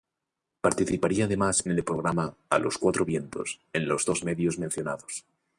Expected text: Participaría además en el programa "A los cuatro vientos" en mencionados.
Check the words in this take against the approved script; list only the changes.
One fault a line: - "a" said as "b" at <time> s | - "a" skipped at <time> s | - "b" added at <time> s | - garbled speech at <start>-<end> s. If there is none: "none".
- "los dos medios" added at 3.9 s